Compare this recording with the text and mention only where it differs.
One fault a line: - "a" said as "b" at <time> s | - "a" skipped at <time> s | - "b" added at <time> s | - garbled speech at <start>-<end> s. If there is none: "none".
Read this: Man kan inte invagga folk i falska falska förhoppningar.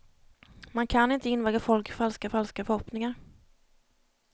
none